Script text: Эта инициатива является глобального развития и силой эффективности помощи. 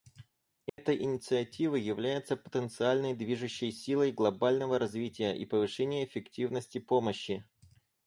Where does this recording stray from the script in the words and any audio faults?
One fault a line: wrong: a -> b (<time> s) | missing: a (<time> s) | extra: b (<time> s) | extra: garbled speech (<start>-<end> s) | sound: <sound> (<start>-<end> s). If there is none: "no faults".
sound: dropout (0.7-0.8 s)
extra: потенциальной движущей силой (2.4 s)
wrong: силой -> повышения (5.4 s)